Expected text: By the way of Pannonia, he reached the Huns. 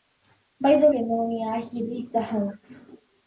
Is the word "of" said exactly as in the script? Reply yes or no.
no